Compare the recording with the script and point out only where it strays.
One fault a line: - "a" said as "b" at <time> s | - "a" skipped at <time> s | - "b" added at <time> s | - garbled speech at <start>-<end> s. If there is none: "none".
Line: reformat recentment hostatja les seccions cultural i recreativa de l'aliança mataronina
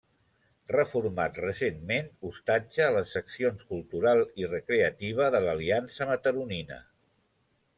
none